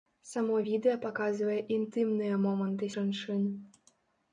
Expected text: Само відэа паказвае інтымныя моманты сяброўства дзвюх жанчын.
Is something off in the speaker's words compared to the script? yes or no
yes